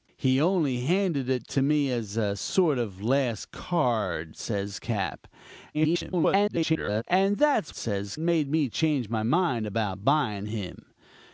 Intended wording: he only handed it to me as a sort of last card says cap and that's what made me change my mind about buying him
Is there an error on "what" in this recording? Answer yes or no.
yes